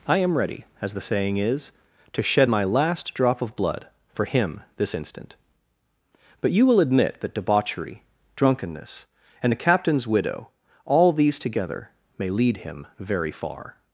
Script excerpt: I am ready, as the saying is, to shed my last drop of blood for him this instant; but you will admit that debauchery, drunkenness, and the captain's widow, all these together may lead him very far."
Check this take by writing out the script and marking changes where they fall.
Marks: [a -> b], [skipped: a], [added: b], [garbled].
I am ready, as the saying is, to shed my last drop of blood for him this instant; but you will admit that debauchery, drunkenness, and the captain's widow, all these together may lead him very far."